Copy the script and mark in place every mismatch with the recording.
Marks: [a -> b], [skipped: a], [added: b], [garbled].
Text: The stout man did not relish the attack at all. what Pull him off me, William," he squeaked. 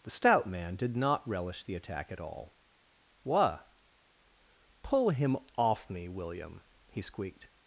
The stout man did not relish the attack at all. what Pull him off me, William," he squeaked.